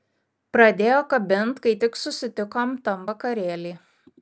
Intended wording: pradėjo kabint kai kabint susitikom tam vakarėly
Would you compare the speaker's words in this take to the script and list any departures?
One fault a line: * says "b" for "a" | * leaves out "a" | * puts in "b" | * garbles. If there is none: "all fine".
* says "tik" for "kabint"